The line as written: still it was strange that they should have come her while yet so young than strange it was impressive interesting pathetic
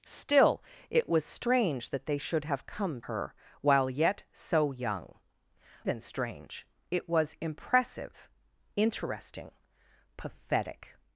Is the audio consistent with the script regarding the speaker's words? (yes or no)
yes